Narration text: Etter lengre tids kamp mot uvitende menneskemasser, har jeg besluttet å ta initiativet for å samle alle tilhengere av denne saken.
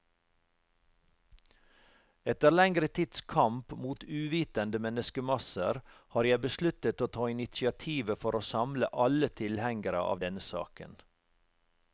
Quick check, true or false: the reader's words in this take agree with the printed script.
true